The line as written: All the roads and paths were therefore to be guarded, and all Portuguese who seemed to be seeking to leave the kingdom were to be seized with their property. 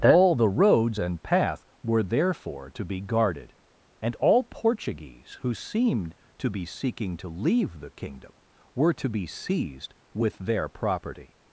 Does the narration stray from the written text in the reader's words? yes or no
yes